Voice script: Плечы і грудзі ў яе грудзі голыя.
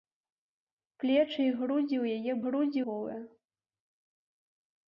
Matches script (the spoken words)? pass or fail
pass